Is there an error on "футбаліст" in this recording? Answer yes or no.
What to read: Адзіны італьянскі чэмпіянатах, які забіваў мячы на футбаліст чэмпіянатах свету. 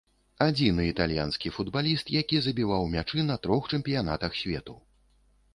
yes